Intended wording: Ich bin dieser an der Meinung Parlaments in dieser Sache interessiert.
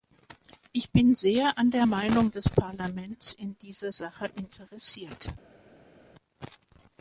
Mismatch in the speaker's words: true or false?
true